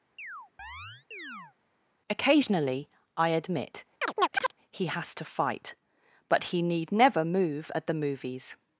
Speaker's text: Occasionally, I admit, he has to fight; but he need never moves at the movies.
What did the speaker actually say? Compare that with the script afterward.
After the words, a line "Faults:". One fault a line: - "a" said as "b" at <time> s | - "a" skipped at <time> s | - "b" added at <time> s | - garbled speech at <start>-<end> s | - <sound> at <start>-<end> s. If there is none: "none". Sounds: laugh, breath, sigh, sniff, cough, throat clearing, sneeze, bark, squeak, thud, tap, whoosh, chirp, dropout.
Occasionally, I admit, he has to fight; but he need never move at the movies.
Faults:
- chirp at 0.2-1.6 s
- chirp at 4.0-4.5 s
- "moves" said as "move" at 7.2 s